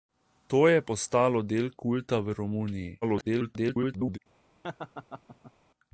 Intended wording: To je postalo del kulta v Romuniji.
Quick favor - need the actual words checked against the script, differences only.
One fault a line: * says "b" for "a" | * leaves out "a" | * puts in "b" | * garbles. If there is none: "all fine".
* garbles